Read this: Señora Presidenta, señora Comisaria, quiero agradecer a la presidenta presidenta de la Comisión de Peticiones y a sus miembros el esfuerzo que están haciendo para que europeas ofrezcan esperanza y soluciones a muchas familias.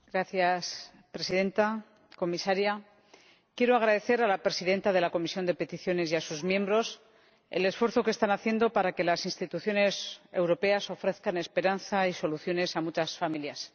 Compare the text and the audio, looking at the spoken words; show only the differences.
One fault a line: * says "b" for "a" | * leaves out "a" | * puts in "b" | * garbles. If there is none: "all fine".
* leaves out "presidenta"
* puts in "las instituciones"